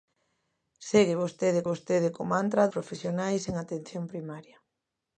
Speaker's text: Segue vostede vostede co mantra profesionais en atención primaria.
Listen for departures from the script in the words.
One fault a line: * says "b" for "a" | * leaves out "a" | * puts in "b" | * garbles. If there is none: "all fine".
all fine